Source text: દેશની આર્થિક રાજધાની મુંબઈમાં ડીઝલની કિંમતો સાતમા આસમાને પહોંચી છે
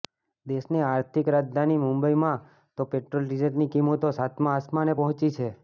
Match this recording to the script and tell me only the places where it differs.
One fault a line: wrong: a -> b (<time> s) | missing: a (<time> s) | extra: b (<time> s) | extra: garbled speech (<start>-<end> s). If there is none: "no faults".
extra: તો પેટ્રોલ (2.8 s)